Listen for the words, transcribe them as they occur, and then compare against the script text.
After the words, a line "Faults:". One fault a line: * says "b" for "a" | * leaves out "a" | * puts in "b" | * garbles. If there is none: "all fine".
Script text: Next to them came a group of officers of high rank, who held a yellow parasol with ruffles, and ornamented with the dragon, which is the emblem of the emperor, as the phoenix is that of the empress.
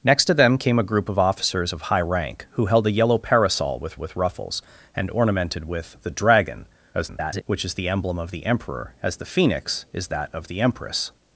Next to them came a group of officers of high rank, who held a yellow parasol with with ruffles, and ornamented with the dragon, [garbled] which is the emblem of the emperor, as the phoenix is that of the empress.
Faults:
* puts in "with"
* garbles